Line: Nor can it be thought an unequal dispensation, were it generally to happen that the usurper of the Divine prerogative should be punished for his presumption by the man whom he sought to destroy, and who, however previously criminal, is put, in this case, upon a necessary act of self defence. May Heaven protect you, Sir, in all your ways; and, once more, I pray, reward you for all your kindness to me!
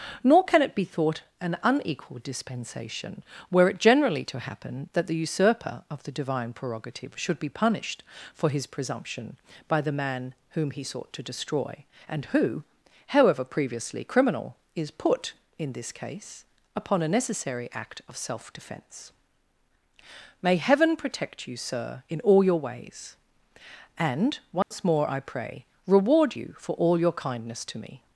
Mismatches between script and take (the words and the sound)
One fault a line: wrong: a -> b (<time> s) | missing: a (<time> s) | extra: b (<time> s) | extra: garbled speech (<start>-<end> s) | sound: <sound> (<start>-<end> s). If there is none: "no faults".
sound: dropout (24.6-24.7 s)